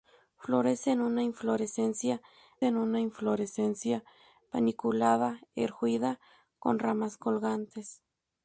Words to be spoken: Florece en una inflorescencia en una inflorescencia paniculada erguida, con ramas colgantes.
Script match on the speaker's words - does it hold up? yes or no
yes